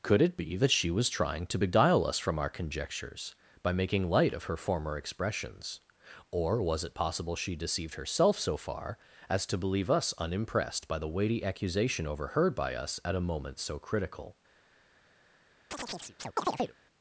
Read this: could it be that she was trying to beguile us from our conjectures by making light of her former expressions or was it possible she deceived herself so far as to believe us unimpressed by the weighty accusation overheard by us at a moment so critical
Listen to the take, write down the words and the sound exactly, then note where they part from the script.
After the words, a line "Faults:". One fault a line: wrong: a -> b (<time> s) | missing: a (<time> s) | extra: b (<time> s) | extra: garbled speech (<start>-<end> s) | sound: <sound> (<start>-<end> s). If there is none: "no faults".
could it be that she was trying to beguile us from our conjectures by making light of her former expressions or was it possible she deceived herself so far as to believe us unimpressed by the weighty accusation overheard by us at a moment so critical
Faults:
sound: chirp (15.7-16.8 s)